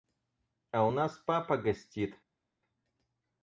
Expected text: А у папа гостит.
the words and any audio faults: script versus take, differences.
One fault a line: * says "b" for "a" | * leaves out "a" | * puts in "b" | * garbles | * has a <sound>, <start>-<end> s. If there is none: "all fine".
* puts in "нас"